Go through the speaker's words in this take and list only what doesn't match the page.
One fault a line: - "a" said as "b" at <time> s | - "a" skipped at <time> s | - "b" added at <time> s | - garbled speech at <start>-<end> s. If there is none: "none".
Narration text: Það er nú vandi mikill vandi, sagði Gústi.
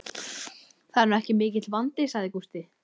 - "vandi" said as "ekki" at 1.2 s